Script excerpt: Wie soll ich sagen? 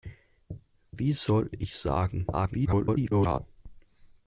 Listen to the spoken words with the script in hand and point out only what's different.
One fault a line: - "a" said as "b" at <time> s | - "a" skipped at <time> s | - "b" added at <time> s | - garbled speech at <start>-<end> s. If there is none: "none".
- garbled speech at 2.3-3.4 s